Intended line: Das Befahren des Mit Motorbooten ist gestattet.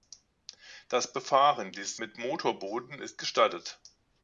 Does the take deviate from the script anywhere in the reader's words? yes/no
no